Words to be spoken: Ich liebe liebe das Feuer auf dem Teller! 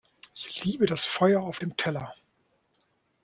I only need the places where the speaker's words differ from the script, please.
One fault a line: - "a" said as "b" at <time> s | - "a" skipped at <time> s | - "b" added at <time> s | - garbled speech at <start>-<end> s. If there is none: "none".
- "liebe" skipped at 0.9 s